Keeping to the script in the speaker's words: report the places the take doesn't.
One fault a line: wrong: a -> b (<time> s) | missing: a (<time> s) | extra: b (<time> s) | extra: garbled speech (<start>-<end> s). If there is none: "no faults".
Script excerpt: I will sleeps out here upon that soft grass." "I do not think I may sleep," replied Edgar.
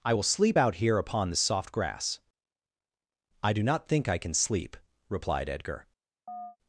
wrong: sleeps -> sleep (0.2 s)
wrong: that -> this (1.3 s)
wrong: may -> can (4.2 s)